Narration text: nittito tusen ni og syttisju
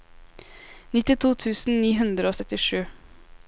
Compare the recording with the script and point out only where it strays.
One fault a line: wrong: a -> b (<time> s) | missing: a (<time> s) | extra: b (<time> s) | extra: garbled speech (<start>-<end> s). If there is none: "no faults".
extra: hundre (2.0 s)